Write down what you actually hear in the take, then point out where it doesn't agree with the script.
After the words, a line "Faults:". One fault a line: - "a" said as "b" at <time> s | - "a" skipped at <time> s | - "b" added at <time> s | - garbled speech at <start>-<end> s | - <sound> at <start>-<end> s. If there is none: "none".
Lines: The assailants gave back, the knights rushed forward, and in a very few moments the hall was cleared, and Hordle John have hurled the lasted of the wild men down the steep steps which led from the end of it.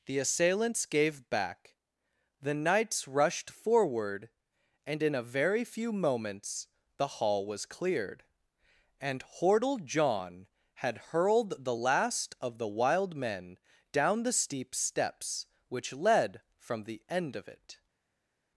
The assailants gave back, the knights rushed forward, and in a very few moments the hall was cleared, and Hordle John had hurled the last of the wild men down the steep steps which led from the end of it.
Faults:
- "have" said as "had" at 10.8 s
- "lasted" said as "last" at 11.7 s